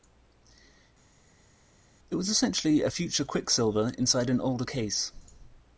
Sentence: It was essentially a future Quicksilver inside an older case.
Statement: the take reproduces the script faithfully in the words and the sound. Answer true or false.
true